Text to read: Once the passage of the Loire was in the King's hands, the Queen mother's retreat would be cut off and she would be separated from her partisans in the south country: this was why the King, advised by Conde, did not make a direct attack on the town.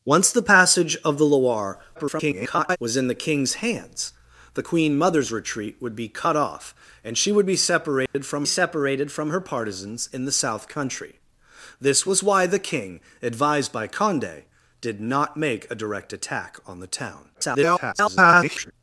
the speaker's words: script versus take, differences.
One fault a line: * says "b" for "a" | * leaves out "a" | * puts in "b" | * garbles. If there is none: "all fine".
* garbles
* puts in "separated from"
* garbles